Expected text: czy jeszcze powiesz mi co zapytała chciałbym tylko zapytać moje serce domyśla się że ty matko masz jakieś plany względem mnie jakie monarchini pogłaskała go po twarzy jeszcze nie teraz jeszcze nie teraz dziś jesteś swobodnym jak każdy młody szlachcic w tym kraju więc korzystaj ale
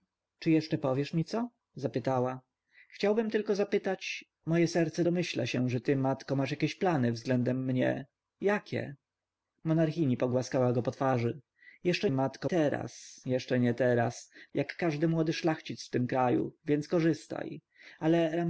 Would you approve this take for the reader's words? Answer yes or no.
no